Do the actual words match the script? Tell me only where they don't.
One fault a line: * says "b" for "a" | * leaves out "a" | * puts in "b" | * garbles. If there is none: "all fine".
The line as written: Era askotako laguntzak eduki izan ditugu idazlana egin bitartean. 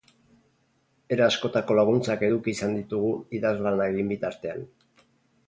all fine